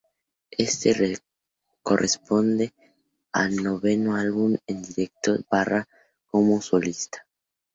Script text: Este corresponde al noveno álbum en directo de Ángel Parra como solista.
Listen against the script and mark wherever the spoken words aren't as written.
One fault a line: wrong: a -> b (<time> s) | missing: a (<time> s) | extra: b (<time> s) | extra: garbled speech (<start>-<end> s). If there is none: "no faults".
missing: de Ángel (5.4 s)